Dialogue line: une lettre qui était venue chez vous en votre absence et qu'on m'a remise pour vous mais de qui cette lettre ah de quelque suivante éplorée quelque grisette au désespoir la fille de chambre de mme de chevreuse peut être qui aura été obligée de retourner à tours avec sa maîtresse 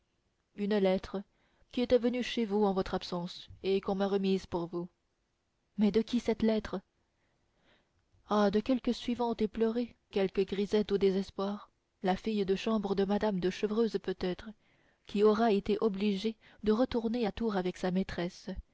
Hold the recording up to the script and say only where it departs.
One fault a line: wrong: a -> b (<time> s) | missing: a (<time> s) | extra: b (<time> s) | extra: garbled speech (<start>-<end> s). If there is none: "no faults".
no faults